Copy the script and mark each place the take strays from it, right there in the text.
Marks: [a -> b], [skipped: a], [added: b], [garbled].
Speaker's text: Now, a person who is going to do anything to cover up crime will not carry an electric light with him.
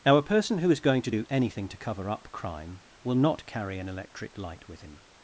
Now, a person who is going to do anything to cover up crime will not carry an electric light with him.